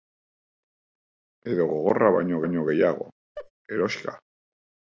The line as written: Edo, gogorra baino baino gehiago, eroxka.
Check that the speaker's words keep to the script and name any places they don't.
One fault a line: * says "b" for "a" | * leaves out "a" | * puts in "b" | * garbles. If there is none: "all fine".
all fine